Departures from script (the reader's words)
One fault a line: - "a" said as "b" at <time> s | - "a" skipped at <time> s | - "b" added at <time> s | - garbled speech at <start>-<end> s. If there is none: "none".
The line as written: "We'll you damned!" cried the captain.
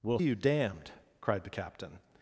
none